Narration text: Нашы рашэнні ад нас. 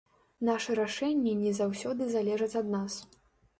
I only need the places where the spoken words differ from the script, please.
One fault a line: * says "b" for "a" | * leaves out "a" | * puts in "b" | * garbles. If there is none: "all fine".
* puts in "не заўсёды залежаць"